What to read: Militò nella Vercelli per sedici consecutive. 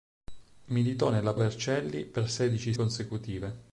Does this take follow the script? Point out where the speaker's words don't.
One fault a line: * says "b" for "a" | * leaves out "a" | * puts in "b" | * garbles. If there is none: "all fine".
all fine